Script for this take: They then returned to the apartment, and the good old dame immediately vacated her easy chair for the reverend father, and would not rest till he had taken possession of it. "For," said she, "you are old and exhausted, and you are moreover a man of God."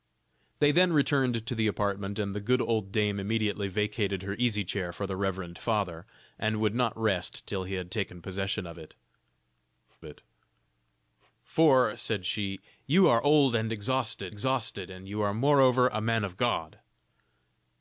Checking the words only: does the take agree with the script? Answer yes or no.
no